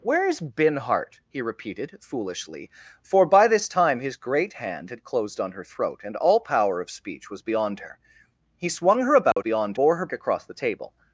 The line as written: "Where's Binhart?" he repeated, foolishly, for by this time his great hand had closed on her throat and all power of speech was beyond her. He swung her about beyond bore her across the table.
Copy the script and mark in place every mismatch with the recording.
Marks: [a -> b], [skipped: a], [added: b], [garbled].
"Where's Binhart?" he repeated, foolishly, for by this time his great hand had closed on her throat and all power of speech was beyond her. He swung her about beyond bore her across the table.